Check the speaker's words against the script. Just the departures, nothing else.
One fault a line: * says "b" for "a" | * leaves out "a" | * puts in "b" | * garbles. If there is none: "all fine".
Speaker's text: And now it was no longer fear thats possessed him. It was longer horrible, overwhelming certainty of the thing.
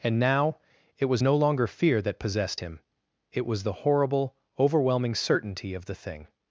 * says "that" for "thats"
* says "the" for "longer"